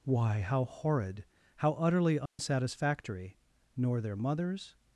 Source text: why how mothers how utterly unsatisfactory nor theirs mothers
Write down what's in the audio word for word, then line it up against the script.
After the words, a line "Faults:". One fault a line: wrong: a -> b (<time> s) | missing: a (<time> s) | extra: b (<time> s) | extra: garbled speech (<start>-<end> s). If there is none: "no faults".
why how horrid how utterly unsatisfactory nor their mothers
Faults:
wrong: mothers -> horrid (0.7 s)
wrong: theirs -> their (4.0 s)